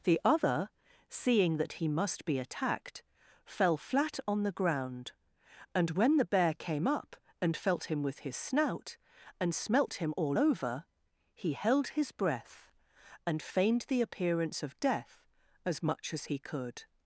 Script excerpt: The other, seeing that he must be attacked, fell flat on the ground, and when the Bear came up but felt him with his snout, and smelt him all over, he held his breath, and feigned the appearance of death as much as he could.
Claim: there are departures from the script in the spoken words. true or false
true